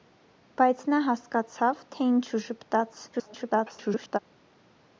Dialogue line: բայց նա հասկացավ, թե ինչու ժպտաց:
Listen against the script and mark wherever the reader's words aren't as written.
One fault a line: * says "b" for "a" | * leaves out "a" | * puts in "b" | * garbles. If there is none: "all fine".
* garbles